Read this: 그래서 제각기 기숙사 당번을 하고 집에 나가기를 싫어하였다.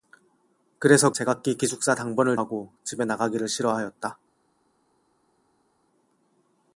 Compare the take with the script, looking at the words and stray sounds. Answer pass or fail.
pass